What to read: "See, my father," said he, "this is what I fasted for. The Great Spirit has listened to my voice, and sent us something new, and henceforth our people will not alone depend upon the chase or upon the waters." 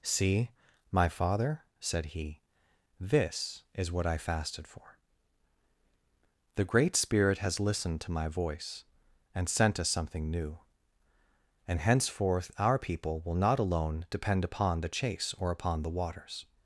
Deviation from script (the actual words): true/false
false